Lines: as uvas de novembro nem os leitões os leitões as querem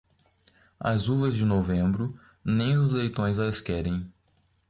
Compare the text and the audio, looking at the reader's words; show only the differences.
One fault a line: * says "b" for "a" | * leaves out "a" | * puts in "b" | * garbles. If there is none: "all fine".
* leaves out "os leitões"